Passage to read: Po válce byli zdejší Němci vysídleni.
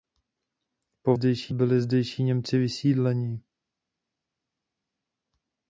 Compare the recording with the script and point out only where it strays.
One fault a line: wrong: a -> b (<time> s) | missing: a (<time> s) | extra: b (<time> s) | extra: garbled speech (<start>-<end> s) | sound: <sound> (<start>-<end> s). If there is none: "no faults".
wrong: válce -> zdejší (1.1 s)